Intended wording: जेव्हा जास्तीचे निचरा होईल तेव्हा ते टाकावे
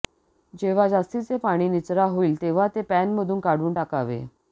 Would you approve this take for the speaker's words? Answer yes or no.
no